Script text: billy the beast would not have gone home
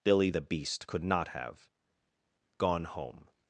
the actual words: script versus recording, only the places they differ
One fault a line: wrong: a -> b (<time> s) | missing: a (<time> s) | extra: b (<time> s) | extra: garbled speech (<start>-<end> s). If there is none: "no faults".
wrong: would -> could (0.9 s)